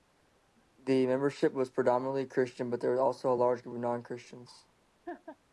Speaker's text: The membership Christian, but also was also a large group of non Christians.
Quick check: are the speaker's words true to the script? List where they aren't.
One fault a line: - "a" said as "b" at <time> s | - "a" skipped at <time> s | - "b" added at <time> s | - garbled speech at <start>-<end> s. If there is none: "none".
- "was predominantly" added at 1.5 s
- "also" said as "there" at 2.8 s